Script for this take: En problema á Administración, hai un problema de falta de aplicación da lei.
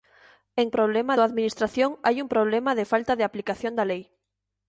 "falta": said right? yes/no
yes